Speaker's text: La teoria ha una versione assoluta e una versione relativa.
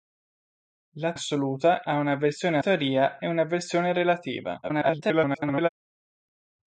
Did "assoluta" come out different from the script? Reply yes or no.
yes